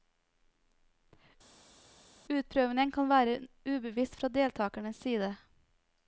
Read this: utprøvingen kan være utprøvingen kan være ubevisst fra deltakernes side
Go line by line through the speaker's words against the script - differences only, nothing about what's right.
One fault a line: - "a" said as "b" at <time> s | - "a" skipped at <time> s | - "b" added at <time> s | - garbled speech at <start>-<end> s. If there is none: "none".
- "utprøvingen kan være" skipped at 3.3 s